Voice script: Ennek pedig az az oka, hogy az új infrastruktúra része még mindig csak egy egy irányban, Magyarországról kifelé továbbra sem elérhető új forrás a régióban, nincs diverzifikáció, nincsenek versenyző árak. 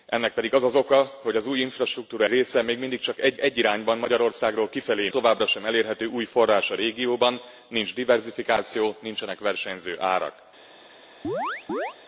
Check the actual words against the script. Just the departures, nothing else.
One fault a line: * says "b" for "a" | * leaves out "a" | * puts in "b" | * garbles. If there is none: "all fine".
all fine